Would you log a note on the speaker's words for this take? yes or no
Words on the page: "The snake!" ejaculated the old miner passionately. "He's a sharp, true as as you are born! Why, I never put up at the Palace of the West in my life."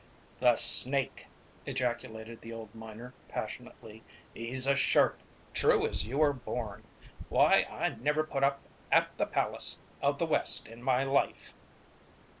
yes